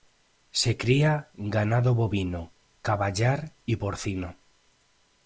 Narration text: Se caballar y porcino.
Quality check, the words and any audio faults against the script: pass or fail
fail